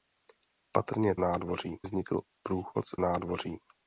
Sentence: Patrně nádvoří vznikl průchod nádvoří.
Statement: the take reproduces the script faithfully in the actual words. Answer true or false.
true